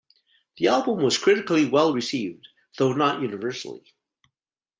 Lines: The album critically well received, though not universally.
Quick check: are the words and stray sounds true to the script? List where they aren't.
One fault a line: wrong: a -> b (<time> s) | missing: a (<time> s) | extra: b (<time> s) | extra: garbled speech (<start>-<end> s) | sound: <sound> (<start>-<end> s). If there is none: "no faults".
extra: was (1.0 s)